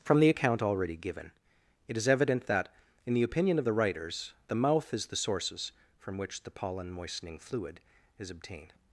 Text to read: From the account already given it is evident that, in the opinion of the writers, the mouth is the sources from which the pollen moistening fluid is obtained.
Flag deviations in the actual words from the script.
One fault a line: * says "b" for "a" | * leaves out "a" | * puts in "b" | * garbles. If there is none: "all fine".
all fine